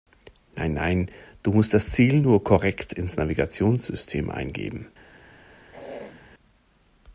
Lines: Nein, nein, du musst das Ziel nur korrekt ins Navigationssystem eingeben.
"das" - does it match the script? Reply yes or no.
yes